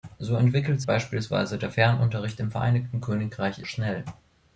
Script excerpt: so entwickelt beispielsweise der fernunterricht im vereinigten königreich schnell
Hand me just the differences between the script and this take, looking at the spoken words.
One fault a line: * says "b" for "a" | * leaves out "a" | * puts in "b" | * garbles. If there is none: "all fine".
all fine